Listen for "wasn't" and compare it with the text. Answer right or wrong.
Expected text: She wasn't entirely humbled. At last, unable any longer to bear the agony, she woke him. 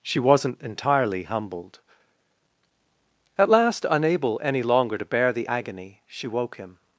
right